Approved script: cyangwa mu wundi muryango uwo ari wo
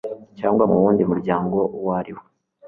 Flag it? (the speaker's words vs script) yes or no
no